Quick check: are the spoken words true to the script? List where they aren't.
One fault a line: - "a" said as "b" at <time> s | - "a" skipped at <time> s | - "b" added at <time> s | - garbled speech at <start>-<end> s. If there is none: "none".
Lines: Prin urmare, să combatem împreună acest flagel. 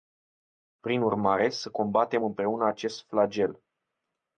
none